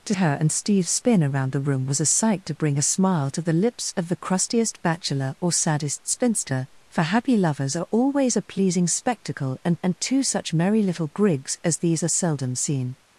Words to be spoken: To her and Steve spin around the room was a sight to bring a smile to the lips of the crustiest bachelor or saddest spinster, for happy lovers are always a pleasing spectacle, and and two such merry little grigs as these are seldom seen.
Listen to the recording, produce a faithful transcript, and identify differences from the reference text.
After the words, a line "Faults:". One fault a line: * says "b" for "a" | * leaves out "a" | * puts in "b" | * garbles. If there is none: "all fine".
To her and Steve spin around the room was a sight to bring a smile to the lips of the crustiest bachelor or saddest spinster, for happy lovers are always a pleasing spectacle, and and two such merry little grigs as these are seldom seen.
Faults:
all fine